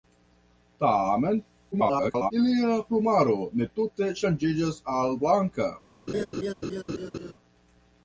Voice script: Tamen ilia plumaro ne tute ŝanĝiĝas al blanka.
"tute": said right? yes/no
yes